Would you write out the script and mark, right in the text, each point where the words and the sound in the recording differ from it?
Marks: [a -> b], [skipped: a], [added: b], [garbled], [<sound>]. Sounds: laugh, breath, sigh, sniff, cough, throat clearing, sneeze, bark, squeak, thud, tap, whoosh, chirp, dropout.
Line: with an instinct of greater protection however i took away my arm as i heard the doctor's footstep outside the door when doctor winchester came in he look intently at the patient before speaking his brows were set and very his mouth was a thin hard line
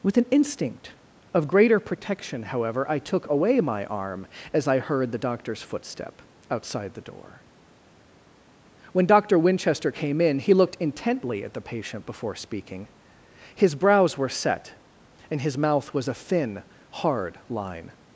with an instinct of greater protection however i took away my arm as i heard the doctor's footstep outside the door when doctor winchester came in he [look -> looked] intently at the patient before speaking his brows were set and [skipped: very] his mouth was a thin hard line